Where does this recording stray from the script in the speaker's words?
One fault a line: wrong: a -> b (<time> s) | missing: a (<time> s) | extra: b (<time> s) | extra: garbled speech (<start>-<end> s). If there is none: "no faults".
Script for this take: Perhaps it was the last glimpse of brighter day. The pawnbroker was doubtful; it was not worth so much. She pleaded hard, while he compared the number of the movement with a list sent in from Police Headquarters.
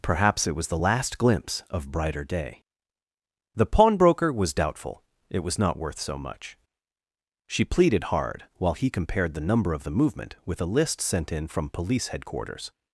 no faults